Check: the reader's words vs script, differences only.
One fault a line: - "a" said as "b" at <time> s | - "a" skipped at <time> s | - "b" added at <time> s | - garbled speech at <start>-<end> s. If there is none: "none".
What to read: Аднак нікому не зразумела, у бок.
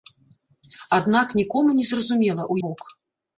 none